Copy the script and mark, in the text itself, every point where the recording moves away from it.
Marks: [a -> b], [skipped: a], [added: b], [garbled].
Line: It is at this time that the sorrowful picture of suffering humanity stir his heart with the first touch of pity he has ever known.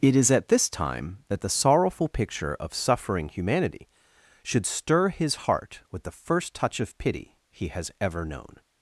It is at this time that the sorrowful picture of suffering humanity [added: should] stir his heart with the first touch of pity he has ever known.